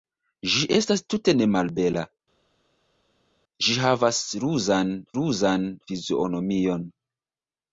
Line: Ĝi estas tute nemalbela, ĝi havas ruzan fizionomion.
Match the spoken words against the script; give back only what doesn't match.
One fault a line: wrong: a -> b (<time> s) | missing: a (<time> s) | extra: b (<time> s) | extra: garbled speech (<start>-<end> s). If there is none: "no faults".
extra: ruzan (5.2 s)